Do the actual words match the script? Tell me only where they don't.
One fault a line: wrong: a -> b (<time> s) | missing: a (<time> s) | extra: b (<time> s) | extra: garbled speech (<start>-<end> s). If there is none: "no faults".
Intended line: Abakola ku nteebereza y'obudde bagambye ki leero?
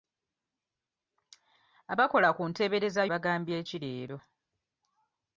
missing: y'obudde (3.0 s)